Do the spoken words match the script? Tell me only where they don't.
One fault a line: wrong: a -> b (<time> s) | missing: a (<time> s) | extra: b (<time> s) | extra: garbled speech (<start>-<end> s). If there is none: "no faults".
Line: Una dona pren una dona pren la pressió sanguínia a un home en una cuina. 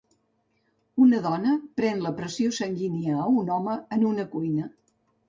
missing: una dona pren (2.0 s)